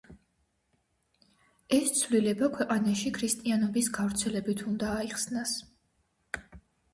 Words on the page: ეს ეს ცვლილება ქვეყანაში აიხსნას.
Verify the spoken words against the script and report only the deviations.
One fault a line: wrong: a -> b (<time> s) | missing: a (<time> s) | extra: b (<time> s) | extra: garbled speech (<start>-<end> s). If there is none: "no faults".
missing: ეს (1.9 s)
extra: ქრისტიანობის გავრცელებით უნდა (3.2 s)